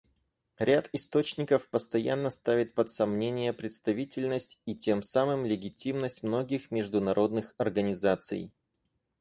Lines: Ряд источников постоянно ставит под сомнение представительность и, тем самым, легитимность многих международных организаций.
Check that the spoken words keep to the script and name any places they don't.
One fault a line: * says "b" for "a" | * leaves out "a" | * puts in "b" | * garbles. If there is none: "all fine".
all fine